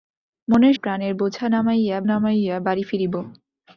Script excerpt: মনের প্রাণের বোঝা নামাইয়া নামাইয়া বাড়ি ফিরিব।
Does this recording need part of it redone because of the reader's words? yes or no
no